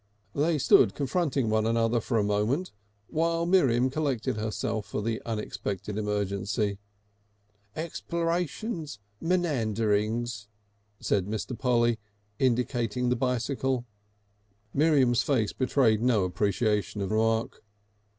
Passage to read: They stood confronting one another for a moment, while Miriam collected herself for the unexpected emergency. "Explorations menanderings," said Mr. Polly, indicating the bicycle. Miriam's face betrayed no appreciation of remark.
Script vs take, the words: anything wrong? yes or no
no